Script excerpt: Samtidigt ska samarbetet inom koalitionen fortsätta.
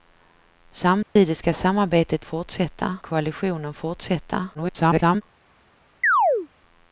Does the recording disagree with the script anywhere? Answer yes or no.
yes